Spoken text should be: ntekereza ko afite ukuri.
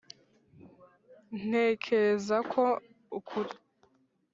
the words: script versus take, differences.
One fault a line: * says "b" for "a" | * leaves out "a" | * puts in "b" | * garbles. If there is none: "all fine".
* leaves out "afite"